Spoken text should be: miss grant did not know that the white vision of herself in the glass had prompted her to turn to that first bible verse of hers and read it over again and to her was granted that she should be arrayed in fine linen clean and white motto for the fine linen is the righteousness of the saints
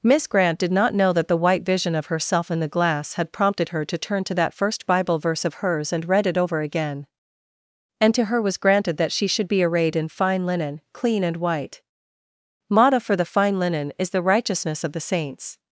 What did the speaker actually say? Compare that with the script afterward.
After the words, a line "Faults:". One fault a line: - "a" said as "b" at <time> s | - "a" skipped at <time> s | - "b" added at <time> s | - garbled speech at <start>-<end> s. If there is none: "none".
miss grant did not know that the white vision of herself in the glass had prompted her to turn to that first bible verse of hers and read it over again and to her was granted that she should be arrayed in fine linen clean and white motto for the fine linen is the righteousness of the saints
Faults:
none